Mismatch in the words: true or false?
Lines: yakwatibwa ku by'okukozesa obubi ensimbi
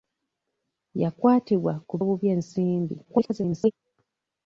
true